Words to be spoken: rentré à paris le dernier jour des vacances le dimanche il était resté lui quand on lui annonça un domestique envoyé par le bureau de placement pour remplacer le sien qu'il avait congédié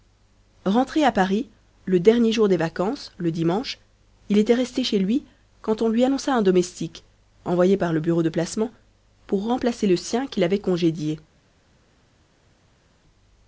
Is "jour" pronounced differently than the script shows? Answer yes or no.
no